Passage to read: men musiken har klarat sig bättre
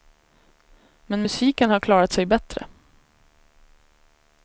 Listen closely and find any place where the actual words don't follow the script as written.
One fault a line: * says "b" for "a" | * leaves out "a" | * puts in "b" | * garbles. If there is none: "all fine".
all fine